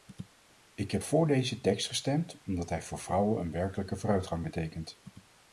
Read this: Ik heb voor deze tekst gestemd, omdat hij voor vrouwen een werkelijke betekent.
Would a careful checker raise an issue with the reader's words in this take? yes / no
yes